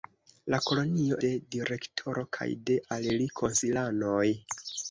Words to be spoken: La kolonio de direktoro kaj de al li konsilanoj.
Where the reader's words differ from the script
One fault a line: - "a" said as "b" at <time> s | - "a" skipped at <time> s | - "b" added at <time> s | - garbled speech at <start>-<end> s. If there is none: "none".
none